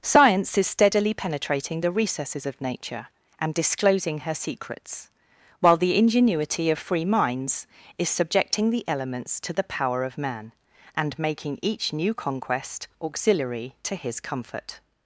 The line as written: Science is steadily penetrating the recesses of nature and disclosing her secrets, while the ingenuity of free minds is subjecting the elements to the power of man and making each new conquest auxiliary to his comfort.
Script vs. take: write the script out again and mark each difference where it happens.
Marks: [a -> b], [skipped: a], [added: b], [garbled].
Science is steadily penetrating the recesses of nature and disclosing her secrets, while the ingenuity of free minds is subjecting the elements to the power of man and making each new conquest auxiliary to his comfort.